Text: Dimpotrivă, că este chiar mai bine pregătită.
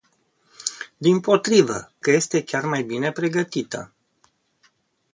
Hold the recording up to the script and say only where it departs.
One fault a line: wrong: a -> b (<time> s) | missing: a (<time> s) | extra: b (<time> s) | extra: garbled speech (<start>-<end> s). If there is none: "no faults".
no faults